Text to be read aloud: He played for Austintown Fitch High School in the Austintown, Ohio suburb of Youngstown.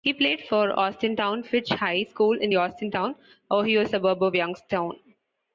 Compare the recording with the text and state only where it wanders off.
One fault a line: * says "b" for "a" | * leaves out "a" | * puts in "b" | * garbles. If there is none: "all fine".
all fine